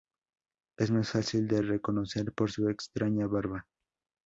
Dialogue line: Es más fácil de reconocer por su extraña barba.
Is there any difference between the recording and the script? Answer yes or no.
no